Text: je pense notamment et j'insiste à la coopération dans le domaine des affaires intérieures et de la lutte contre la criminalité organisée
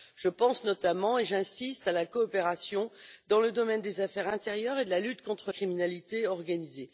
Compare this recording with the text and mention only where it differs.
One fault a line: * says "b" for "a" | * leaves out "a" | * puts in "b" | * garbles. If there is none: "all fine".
* leaves out "la"